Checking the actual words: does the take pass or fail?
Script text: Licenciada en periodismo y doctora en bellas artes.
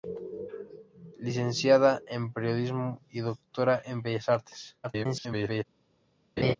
fail